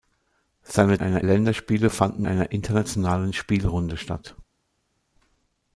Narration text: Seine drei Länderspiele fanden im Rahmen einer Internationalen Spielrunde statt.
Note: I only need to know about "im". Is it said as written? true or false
false